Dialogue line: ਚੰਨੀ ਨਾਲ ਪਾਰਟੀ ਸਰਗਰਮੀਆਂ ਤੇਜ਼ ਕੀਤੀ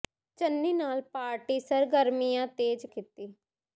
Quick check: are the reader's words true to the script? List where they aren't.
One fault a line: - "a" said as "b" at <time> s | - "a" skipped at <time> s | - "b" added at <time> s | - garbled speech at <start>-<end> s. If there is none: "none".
none